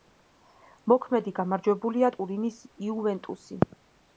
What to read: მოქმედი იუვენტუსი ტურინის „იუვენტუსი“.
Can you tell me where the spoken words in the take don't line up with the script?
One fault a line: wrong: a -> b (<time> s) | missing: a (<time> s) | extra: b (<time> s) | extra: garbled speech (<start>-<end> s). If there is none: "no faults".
wrong: იუვენტუსი -> გამარჯვებულია (1.4 s)